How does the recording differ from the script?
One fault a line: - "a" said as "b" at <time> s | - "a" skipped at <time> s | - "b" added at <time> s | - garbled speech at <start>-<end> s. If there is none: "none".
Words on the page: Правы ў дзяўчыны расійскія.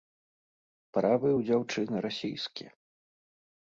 none